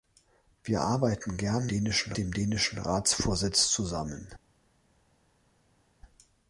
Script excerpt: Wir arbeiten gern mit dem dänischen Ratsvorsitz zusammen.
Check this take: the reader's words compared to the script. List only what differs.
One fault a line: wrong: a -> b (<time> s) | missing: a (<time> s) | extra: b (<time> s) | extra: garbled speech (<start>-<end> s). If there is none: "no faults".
wrong: mit -> dänischen (1.7 s)